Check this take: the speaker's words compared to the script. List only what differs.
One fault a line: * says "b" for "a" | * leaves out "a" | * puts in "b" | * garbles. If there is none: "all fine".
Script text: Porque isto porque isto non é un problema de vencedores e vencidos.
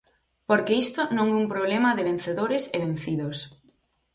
* leaves out "porque isto"